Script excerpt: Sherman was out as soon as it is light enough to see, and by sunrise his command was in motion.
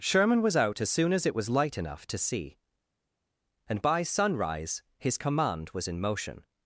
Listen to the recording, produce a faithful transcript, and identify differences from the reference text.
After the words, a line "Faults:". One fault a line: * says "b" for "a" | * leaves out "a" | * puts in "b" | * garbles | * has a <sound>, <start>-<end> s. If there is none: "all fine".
Sherman was out as soon as it was light enough to see, and by sunrise his command was in motion.
Faults:
* says "was" for "is"